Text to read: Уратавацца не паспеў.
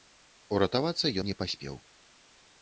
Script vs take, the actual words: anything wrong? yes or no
no